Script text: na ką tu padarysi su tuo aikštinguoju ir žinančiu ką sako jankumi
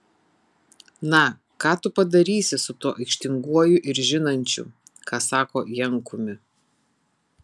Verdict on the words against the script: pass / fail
pass